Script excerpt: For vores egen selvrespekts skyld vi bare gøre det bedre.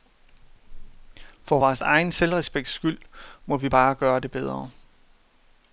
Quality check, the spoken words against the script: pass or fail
fail